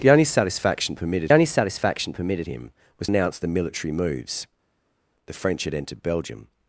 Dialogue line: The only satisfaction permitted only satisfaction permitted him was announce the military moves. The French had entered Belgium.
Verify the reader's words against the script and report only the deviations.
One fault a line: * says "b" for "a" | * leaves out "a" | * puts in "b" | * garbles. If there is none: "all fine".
all fine